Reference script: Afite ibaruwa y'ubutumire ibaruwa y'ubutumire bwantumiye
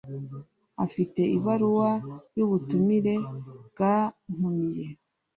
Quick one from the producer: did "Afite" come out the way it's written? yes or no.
yes